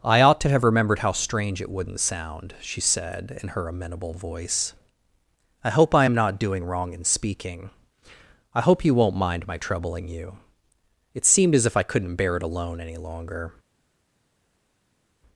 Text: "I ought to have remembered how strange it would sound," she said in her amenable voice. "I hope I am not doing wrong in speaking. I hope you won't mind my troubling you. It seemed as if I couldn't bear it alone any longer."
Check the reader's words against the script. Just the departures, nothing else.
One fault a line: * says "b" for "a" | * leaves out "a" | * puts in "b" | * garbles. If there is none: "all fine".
* says "wouldn't" for "would"